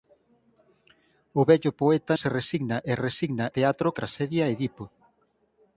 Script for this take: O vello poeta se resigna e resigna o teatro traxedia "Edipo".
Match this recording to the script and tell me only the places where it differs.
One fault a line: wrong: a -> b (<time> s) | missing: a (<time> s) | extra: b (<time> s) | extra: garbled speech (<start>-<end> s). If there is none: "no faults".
no faults